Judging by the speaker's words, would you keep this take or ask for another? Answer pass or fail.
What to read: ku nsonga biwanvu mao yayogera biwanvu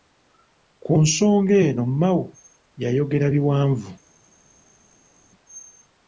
fail